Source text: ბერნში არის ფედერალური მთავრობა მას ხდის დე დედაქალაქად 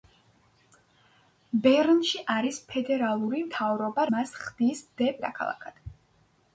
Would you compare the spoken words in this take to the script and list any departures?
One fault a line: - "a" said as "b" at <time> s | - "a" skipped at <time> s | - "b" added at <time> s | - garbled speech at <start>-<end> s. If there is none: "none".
none